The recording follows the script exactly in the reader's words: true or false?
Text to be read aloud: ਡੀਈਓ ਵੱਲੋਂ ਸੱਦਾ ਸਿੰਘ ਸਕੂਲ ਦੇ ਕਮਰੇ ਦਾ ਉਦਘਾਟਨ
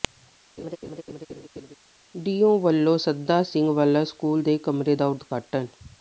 false